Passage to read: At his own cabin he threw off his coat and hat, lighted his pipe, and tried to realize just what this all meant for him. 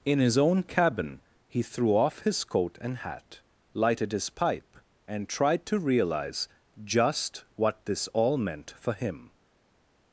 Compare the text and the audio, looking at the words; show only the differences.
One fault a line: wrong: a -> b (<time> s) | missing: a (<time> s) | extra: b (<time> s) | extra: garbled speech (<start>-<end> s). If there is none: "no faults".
wrong: At -> In (0.0 s)